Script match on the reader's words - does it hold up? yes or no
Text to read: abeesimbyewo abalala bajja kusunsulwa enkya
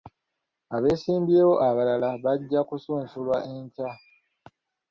yes